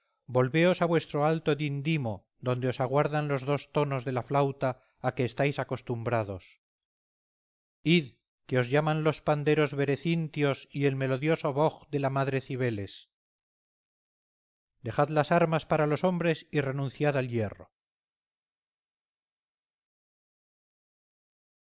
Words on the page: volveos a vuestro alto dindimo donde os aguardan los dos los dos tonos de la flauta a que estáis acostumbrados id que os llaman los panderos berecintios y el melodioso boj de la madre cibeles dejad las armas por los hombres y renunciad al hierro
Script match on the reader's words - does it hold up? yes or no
no